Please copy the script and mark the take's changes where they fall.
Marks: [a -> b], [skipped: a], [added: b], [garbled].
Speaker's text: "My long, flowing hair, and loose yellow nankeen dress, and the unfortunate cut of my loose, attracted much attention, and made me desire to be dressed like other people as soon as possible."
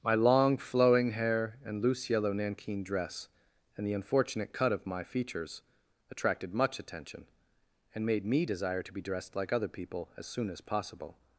"My long, flowing hair, and loose yellow nankeen dress, and the unfortunate cut of my [loose, -> features] attracted much attention, and made me desire to be dressed like other people as soon as possible."